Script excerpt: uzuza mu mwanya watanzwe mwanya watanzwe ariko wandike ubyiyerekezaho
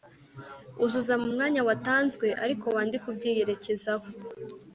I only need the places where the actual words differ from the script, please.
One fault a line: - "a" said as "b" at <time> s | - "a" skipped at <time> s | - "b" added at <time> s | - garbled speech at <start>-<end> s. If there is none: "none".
- "mwanya watanzwe" skipped at 2.3 s